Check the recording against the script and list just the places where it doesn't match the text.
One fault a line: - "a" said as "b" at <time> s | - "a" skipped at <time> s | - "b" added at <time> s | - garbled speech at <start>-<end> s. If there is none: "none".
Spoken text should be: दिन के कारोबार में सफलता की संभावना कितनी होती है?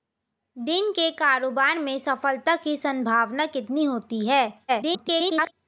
- garbled speech at 4.7-5.5 s